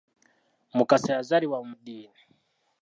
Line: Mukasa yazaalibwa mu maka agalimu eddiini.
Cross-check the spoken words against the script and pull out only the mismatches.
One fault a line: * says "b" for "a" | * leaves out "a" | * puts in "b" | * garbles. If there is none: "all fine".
* leaves out "maka agalimu"